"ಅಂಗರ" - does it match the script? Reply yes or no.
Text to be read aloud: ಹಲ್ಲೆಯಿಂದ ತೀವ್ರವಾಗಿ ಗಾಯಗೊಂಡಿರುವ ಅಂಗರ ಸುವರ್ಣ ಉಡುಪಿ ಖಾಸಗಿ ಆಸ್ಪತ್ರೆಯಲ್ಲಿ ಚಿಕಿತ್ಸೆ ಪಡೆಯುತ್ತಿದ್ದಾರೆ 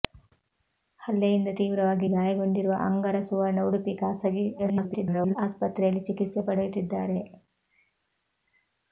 yes